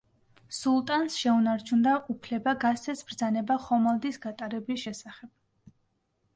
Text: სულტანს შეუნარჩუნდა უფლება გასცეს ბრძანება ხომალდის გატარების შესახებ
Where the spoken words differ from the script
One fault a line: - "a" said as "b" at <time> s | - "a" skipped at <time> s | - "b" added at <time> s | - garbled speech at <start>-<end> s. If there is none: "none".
none